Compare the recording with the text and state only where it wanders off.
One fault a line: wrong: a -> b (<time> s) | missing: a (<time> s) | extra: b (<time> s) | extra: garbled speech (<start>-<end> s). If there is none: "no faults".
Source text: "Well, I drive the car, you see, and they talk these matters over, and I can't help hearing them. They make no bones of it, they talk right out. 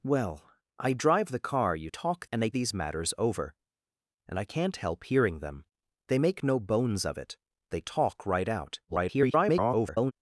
wrong: see -> talk (1.9 s)
missing: talk (2.5 s)
extra: garbled speech (8.9-10.1 s)